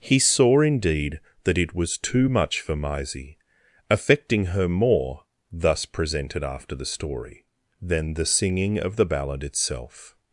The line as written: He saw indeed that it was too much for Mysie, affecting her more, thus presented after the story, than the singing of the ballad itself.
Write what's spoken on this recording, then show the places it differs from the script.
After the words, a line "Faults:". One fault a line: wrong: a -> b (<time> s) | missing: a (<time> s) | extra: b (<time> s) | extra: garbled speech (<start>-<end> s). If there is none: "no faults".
He saw indeed that it was too much for Mysie, affecting her more, thus presented after the story, than the singing of the ballad itself.
Faults:
no faults